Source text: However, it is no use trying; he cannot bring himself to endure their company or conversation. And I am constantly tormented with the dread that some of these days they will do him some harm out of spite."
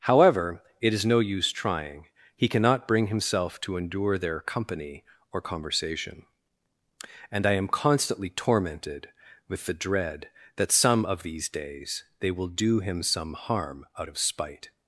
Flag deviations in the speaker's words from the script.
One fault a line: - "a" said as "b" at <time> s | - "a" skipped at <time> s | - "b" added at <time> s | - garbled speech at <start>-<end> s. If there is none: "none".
none